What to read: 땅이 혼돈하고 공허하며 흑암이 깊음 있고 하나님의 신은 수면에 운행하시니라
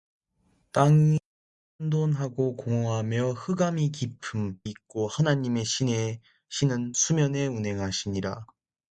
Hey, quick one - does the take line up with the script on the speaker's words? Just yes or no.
yes